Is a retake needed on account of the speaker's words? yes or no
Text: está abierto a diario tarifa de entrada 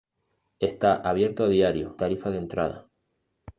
no